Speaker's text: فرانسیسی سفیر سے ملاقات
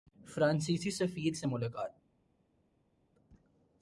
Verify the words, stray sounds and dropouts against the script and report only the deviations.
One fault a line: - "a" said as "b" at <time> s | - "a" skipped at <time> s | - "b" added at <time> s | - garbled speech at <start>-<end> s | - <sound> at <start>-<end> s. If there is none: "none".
none